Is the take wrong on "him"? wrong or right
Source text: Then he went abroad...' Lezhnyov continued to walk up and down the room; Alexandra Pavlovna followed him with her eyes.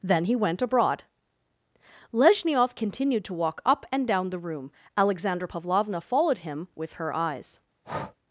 right